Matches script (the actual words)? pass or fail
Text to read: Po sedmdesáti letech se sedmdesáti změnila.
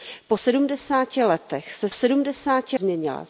pass